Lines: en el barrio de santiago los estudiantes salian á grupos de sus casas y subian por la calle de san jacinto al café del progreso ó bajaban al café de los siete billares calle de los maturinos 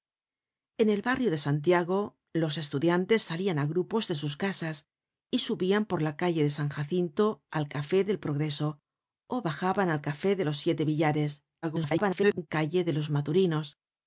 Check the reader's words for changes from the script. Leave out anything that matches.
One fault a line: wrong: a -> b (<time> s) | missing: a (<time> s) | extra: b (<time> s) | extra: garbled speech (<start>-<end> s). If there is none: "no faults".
extra: garbled speech (11.6-12.5 s)